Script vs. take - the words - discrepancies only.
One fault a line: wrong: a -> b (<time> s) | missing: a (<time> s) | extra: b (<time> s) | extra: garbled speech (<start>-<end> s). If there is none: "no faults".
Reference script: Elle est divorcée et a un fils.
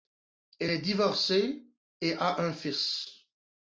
no faults